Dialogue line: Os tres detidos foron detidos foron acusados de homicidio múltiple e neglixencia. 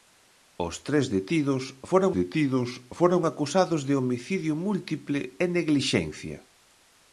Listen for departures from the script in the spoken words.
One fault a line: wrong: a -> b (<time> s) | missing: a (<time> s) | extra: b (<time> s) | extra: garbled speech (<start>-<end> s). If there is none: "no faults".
no faults